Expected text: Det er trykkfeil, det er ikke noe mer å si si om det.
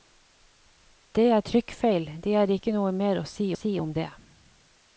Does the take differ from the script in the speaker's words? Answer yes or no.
no